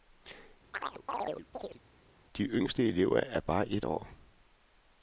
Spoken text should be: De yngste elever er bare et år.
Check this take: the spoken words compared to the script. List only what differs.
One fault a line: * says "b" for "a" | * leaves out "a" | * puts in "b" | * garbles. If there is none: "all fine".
all fine